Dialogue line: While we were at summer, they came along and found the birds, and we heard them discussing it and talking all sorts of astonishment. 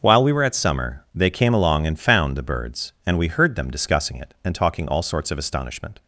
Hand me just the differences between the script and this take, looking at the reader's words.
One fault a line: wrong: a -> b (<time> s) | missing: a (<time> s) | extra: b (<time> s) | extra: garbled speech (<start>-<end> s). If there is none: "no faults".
no faults